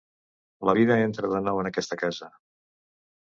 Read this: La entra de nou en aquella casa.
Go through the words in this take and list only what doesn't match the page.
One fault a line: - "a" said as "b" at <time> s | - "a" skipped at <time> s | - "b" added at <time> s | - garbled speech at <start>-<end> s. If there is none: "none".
- "vida" added at 0.8 s
- "aquella" said as "aquesta" at 1.7 s